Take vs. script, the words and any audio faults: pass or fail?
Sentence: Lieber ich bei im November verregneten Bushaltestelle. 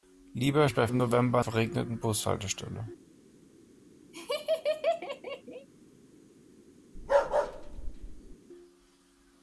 fail